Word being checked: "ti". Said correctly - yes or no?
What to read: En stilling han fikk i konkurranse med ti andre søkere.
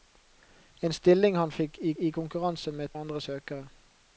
no